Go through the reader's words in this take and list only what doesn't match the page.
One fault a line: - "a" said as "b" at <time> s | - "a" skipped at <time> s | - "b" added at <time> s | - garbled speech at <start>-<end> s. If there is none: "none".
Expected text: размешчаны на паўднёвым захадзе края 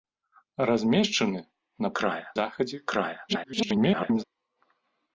- "паўднёвым" said as "края" at 2.0 s
- garbled speech at 3.3-4.2 s